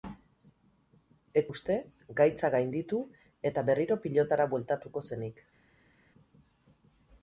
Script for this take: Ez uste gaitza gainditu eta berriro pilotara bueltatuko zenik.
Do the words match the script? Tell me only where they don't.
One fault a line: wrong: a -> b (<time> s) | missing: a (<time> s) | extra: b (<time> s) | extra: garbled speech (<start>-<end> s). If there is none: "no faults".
no faults